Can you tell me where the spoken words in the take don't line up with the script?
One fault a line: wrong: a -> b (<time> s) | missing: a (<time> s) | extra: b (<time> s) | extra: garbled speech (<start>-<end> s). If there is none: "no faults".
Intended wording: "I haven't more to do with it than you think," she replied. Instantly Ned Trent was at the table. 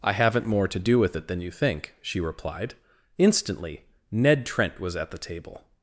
no faults